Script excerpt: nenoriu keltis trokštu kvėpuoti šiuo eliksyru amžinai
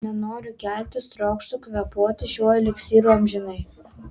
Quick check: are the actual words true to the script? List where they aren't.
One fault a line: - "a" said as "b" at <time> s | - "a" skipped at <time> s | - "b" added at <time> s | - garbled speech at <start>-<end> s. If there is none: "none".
none